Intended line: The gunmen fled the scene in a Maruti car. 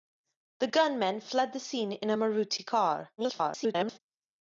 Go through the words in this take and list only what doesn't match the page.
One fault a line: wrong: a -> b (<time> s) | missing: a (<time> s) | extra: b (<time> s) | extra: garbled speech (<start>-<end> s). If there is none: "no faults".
extra: garbled speech (3.2-4.0 s)